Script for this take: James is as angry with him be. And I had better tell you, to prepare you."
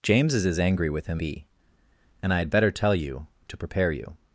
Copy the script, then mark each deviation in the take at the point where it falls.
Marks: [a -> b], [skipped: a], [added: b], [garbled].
James is as angry with him be. And I had better tell you, to prepare you."